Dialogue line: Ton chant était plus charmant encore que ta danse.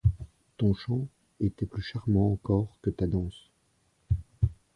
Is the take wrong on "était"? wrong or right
right